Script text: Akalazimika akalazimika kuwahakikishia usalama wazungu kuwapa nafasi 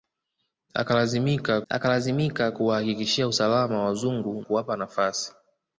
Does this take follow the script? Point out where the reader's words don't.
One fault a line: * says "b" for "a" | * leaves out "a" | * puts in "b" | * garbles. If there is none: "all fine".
all fine